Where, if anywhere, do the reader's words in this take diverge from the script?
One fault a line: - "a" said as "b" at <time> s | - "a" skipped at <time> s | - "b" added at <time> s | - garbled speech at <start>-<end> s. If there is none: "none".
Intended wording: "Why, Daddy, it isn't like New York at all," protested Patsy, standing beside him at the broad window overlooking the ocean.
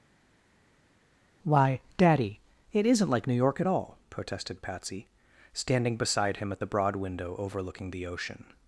none